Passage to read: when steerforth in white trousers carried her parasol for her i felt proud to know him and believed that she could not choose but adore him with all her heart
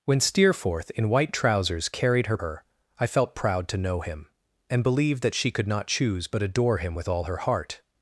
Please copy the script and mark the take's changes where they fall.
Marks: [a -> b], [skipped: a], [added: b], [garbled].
when steerforth in white trousers carried her [skipped: parasol for] her i felt proud to know him and believed that she could not choose but adore him with all her heart